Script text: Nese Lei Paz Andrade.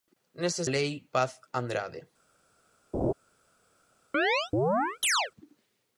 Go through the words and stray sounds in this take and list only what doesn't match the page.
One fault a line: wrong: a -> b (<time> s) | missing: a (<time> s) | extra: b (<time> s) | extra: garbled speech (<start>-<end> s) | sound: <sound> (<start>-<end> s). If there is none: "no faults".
sound: laugh (2.9-3.1 s)
sound: chirp (4.1-5.3 s)